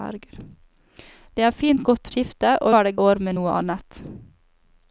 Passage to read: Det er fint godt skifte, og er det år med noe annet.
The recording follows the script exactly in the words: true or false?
true